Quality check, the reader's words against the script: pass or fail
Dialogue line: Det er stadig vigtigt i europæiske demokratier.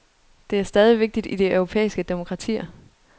fail